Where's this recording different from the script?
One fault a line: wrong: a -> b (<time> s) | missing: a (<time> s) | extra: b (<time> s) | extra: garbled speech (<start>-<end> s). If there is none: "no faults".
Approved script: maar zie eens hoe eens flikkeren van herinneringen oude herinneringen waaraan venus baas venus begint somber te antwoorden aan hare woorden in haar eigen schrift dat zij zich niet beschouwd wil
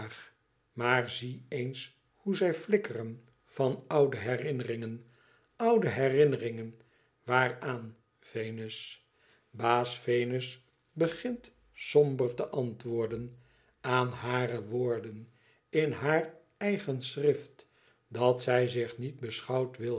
wrong: eens -> zij (2.4 s)
extra: oude (3.9 s)